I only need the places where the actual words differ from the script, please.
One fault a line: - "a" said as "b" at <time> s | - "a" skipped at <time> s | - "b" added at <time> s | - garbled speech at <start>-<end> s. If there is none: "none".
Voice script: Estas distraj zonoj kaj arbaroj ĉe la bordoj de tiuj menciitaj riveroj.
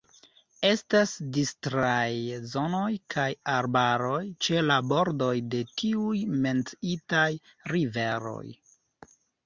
none